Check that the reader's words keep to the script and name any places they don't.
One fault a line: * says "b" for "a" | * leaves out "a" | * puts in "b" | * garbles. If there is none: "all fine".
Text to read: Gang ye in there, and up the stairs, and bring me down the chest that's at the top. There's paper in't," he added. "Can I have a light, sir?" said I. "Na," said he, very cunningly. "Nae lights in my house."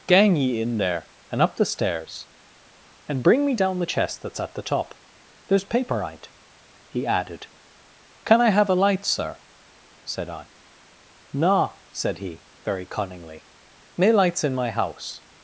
all fine